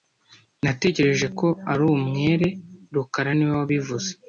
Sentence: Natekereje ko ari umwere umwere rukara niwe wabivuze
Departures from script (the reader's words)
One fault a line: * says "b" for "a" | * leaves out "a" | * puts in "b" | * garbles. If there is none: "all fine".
* leaves out "umwere"